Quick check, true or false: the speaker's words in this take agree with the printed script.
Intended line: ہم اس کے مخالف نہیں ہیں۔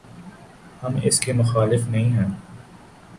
true